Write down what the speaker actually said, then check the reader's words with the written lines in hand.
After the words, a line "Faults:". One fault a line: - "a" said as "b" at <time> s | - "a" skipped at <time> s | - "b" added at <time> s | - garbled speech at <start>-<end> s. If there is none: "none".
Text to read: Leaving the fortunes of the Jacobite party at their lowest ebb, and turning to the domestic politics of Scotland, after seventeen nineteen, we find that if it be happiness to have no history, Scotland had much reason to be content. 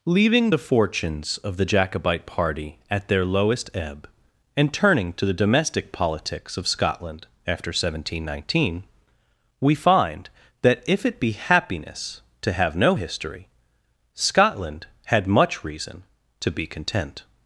Leaving the fortunes of the Jacobite party at their lowest ebb, and turning to the domestic politics of Scotland, after seventeen nineteen, we find that if it be happiness to have no history, Scotland had much reason to be content.
Faults:
none